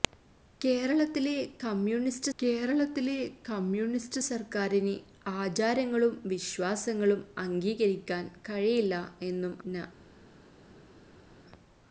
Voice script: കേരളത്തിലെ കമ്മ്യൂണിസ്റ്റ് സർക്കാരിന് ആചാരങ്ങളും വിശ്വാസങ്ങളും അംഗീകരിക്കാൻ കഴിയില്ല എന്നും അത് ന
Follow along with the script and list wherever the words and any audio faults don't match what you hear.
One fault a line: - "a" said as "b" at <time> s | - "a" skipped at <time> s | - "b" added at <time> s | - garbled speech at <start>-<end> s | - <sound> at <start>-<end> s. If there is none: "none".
- "കേരളത്തിലെ കമ്മ്യൂണിസ്റ്റ്" added at 2.4 s
- "അത്" skipped at 9.5 s